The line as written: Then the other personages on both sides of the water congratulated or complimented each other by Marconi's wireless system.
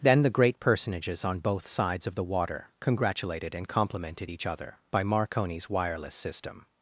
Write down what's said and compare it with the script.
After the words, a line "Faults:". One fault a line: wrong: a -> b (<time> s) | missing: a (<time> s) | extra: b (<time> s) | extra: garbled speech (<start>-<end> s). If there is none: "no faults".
Then the great personages on both sides of the water congratulated and complimented each other by Marconi's wireless system.
Faults:
wrong: other -> great (0.3 s)
wrong: or -> and (3.5 s)